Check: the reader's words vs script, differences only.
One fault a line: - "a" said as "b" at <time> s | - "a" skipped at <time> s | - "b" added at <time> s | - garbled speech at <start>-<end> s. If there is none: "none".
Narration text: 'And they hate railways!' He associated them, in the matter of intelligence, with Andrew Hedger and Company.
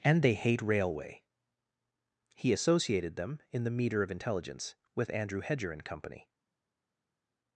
- "railways" said as "railway" at 0.6 s
- "matter" said as "meter" at 3.7 s